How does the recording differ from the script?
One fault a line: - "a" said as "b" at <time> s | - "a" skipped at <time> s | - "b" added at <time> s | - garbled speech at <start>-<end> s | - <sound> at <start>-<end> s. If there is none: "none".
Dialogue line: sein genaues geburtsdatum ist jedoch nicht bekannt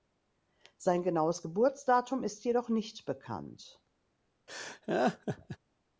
- laugh at 4.5-5.6 s